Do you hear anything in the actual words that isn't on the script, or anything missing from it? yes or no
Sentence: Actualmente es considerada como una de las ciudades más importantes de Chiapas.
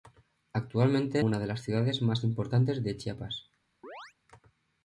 yes